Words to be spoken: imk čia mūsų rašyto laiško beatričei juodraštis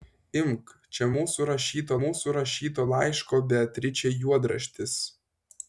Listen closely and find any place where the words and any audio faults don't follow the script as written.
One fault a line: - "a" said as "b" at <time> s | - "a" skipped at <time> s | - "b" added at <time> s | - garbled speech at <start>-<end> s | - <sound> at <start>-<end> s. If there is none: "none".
- "mūsų rašyto" added at 2.0 s